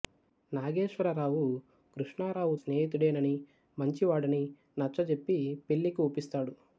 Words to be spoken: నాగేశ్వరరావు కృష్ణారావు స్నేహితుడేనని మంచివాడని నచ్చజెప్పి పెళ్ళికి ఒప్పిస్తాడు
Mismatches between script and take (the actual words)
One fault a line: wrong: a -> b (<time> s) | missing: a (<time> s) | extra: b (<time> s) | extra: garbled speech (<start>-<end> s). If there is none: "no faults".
no faults